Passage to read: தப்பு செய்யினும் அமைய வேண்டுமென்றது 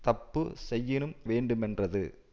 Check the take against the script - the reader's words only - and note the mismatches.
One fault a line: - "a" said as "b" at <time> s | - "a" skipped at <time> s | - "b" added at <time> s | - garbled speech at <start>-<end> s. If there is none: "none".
- "அமைய" skipped at 1.1 s